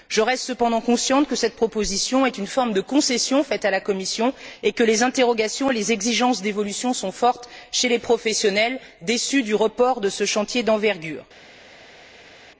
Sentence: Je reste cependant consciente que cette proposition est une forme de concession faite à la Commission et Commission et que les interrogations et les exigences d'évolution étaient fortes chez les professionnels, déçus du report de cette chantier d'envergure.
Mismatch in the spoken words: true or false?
true